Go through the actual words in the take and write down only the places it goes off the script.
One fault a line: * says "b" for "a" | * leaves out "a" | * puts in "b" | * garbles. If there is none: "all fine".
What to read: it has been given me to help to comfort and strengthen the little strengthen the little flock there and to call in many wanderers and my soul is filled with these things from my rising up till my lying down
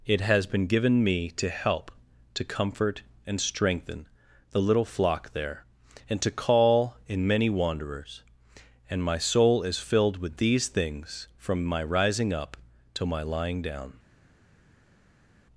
* leaves out "strengthen the little"